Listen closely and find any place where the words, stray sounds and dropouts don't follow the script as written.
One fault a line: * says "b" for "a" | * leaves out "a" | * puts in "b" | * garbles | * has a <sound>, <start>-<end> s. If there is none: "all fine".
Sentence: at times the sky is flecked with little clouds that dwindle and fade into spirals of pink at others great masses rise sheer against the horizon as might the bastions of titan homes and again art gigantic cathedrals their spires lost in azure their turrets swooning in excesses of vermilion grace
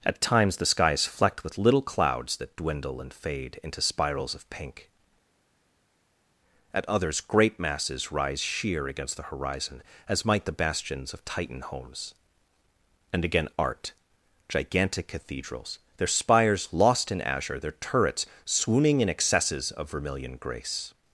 all fine